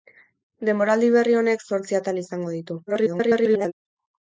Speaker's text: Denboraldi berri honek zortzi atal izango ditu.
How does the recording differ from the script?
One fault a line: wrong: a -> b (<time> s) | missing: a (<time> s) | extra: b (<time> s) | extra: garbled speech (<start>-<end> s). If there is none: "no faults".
extra: garbled speech (2.9-3.7 s)